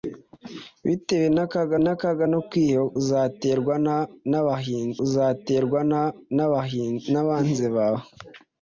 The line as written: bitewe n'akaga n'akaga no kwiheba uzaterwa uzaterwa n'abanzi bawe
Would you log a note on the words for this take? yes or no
no